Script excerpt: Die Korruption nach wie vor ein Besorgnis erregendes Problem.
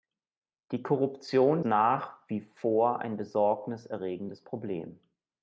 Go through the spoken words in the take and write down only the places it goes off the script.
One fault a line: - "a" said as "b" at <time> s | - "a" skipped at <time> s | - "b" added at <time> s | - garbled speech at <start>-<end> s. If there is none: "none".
none